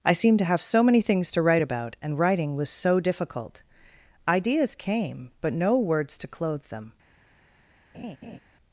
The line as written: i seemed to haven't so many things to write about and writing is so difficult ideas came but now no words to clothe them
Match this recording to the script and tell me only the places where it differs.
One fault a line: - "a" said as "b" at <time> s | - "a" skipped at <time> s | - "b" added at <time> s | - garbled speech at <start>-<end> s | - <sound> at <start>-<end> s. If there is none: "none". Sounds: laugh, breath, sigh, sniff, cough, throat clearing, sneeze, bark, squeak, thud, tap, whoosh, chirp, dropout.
- "haven't" said as "have" at 0.5 s
- "is" said as "was" at 2.6 s
- "now" skipped at 5.5 s
- laugh at 7.9-8.4 s